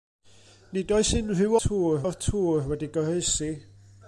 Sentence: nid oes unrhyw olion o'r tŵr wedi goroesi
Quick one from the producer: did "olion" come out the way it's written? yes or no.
no